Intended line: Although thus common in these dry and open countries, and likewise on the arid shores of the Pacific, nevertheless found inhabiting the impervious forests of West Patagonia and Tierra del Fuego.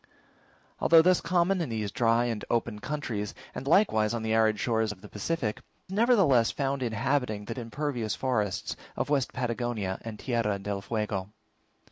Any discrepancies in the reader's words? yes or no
no